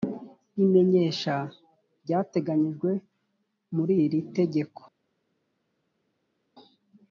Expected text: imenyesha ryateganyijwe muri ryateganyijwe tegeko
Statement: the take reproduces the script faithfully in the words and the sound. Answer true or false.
false